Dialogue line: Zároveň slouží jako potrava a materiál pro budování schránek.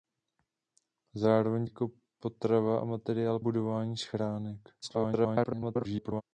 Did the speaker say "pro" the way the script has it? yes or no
no